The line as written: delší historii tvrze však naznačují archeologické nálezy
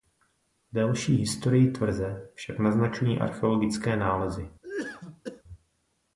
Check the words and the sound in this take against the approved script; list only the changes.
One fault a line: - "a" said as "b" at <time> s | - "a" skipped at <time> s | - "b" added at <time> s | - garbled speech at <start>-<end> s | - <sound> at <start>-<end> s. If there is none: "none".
- cough at 4.6-5.4 s